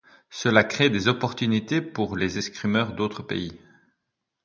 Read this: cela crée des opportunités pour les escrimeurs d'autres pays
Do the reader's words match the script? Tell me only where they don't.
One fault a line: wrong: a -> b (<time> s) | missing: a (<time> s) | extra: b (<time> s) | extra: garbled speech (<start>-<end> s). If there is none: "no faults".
no faults